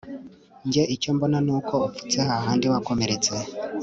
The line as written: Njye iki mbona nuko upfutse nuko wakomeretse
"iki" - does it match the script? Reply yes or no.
no